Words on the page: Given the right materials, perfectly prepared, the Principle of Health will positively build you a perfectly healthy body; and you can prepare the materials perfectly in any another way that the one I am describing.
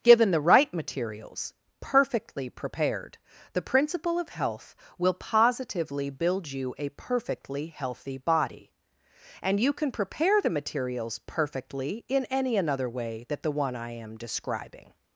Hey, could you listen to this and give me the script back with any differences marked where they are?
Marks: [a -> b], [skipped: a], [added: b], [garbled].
Given the right materials, perfectly prepared, the Principle of Health will positively build you a perfectly healthy body; and you can prepare the materials perfectly in any another way that the one I am describing.